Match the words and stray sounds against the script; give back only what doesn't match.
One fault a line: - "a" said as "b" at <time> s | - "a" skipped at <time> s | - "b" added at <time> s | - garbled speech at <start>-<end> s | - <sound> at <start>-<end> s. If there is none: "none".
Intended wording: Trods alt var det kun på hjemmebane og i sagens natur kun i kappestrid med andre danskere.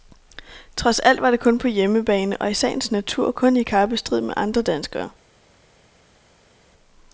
none